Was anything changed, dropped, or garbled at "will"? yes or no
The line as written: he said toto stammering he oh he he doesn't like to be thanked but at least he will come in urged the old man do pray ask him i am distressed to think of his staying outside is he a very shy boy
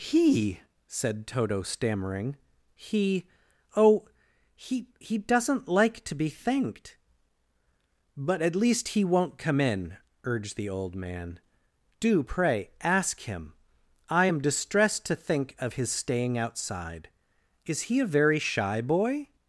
yes